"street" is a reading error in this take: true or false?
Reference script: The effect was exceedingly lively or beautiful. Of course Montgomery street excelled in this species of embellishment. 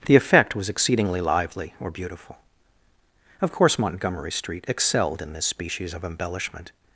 false